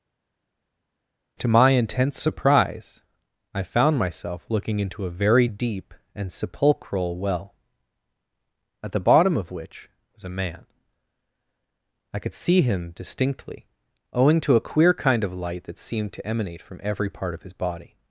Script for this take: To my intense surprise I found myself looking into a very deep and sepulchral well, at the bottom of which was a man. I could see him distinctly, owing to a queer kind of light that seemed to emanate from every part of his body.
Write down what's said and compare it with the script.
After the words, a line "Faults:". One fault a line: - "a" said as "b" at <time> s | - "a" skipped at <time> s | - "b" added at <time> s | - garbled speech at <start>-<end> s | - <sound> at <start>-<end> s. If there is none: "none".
To my intense surprise I found myself looking into a very deep and sepulchral well, at the bottom of which was a man. I could see him distinctly, owing to a queer kind of light that seemed to emanate from every part of his body.
Faults:
none